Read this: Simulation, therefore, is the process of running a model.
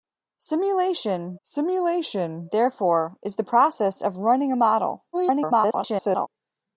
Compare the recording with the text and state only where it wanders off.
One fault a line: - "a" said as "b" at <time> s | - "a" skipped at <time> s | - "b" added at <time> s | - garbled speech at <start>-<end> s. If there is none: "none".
- "simulation" added at 1.4 s
- garbled speech at 5.1-6.3 s